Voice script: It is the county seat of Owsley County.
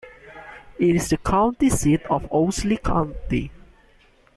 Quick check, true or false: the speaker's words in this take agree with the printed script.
true